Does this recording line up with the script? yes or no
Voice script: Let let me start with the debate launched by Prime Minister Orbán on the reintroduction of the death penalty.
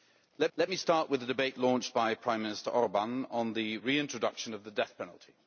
yes